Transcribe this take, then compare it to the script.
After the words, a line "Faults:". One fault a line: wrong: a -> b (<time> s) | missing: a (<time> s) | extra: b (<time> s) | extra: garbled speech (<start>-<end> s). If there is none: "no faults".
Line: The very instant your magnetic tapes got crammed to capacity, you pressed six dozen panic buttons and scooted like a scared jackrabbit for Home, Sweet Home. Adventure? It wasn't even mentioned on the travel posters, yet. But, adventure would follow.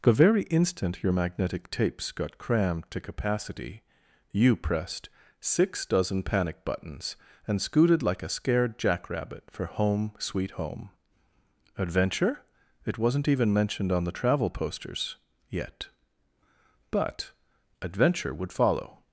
The very instant your magnetic tapes got crammed to capacity, you pressed six dozen panic buttons and scooted like a scared jackrabbit for Home, Sweet Home. Adventure? It wasn't even mentioned on the travel posters, yet. But, adventure would follow.
Faults:
no faults